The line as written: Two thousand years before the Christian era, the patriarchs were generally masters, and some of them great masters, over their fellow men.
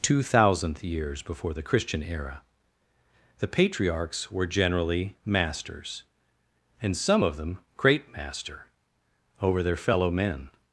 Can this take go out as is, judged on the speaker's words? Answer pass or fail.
fail